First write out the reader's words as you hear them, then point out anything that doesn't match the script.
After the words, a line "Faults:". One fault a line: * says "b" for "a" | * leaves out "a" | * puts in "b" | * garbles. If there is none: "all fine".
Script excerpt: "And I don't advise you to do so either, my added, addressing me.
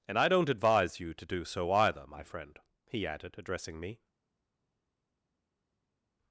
"And I don't advise you to do so either, my friend," he added, addressing me.
Faults:
* puts in "friend he"